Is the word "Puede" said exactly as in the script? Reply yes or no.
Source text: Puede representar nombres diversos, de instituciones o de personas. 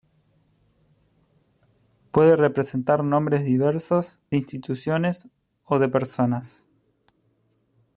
yes